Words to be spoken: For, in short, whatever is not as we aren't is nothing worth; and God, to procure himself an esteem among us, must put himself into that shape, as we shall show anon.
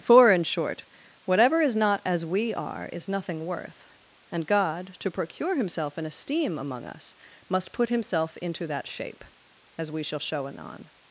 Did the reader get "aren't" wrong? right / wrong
wrong